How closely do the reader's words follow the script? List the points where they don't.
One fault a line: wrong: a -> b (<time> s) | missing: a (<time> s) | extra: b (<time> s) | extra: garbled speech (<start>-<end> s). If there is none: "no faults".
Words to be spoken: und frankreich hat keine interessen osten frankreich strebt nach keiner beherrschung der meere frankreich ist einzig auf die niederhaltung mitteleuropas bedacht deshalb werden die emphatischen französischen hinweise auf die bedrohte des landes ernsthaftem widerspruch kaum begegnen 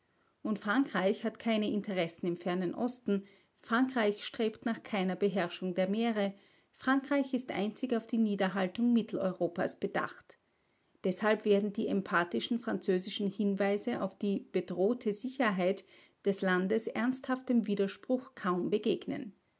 extra: im fernen (2.2 s)
extra: sicherheit (15.1 s)